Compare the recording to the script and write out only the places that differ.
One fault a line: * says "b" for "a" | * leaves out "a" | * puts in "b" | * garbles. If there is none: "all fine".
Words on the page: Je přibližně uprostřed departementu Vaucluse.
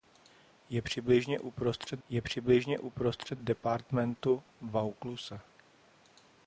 * puts in "je přibližně uprostřed"